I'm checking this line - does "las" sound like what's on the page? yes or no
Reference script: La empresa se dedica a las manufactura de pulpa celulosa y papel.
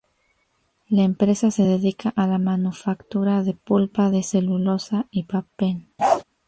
no